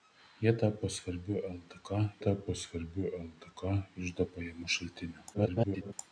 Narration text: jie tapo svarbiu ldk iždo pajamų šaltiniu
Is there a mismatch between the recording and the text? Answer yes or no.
yes